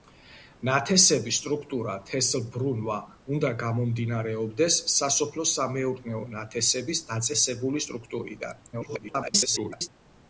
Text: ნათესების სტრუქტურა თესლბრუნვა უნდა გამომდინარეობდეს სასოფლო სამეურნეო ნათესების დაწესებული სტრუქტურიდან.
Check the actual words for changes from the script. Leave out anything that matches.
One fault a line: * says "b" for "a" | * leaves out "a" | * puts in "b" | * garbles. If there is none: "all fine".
* garbles